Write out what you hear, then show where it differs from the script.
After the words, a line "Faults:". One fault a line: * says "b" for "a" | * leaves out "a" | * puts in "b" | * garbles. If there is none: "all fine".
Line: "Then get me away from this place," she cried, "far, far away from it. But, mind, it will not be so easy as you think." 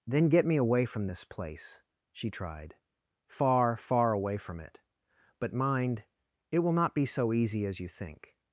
"Then get me away from this place," she tried, "far, far away from it. But, mind, it will not be so easy as you think."
Faults:
* says "tried" for "cried"